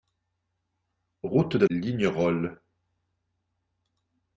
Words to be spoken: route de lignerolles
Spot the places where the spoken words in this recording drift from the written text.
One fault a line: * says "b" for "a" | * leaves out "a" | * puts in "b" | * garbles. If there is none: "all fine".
all fine